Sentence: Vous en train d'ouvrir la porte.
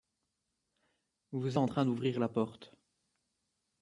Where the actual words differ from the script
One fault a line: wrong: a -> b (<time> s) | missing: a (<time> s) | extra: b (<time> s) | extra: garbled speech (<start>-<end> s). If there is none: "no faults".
no faults